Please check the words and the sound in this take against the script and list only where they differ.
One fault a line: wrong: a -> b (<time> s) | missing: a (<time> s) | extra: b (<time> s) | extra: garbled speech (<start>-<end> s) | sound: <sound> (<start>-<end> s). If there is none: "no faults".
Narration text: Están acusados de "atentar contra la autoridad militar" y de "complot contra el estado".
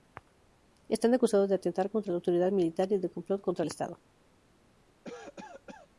sound: cough (5.0-5.9 s)